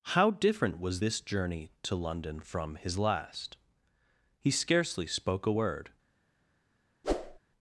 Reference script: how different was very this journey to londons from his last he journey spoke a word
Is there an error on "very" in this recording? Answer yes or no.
yes